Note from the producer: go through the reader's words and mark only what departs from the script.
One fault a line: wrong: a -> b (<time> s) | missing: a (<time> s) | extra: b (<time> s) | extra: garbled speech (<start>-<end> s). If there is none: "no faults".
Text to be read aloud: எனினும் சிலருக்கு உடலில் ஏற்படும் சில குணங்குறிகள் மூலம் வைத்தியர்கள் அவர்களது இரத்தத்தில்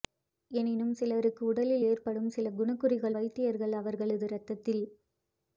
missing: மூலம் (3.2 s)